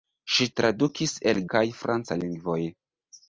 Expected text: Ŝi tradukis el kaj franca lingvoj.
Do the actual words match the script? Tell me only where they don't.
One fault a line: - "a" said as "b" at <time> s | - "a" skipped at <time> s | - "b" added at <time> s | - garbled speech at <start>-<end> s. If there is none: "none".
none